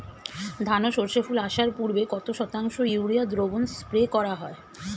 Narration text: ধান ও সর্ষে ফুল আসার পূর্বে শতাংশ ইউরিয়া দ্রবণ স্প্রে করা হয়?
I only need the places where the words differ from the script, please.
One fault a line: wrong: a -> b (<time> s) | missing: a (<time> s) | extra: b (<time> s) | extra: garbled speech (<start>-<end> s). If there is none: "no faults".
extra: কত (2.1 s)